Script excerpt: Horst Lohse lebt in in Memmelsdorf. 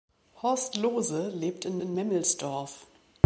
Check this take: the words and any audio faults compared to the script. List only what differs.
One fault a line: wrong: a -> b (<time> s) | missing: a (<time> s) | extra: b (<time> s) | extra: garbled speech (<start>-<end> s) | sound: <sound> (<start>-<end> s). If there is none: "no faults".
no faults